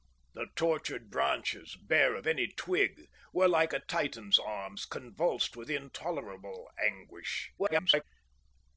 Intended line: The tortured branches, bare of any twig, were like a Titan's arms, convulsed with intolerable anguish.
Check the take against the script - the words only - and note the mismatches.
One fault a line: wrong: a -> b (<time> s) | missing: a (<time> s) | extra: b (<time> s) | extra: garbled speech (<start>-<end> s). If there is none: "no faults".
extra: garbled speech (7.6-8.0 s)